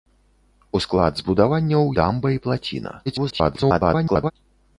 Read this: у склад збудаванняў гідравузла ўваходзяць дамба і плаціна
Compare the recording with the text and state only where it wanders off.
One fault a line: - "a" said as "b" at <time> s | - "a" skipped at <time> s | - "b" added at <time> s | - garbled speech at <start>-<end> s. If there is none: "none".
- "гідравузла ўваходзяць" skipped at 1.8 s
- garbled speech at 3.1-4.3 s